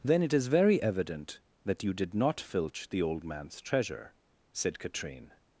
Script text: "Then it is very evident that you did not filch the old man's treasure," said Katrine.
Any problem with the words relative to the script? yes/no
no